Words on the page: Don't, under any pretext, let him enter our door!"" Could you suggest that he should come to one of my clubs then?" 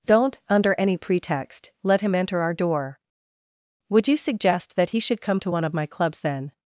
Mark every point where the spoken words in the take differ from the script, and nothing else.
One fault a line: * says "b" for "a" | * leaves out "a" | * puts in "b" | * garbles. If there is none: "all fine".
* says "Would" for "Could"